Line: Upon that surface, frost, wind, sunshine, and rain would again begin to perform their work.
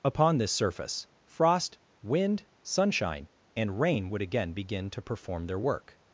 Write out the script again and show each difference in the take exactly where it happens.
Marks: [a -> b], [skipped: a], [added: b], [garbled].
Upon [that -> this] surface, frost, wind, sunshine, and rain would again begin to perform their work.